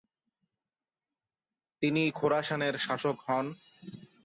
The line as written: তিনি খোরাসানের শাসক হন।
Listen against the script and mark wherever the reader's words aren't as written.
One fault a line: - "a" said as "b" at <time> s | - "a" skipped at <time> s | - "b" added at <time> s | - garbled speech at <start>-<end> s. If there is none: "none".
none